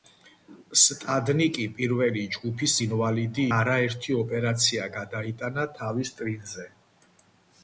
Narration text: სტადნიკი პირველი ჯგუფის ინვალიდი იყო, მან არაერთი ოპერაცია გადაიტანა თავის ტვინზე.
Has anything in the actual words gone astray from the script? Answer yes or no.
yes